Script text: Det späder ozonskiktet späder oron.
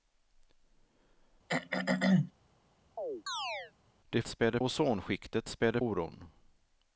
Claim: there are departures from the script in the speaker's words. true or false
false